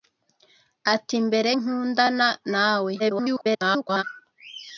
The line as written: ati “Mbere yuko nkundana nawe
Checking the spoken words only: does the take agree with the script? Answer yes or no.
no